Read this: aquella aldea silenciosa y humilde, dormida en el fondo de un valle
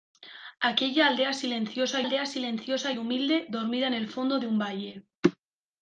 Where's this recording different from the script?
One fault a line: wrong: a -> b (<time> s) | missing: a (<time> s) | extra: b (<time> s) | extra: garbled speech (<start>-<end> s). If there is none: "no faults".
extra: aldea silenciosa (2.0 s)